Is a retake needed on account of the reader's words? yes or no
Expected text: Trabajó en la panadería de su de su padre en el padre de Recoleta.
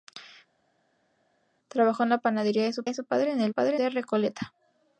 no